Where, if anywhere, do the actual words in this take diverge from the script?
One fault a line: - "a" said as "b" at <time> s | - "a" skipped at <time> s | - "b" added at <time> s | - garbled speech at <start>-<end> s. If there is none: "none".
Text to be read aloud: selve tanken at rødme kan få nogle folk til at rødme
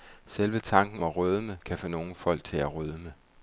none